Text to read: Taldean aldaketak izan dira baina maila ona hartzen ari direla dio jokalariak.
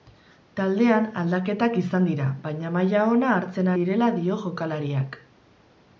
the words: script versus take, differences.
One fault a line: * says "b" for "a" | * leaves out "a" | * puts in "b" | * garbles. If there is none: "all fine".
* leaves out "ari"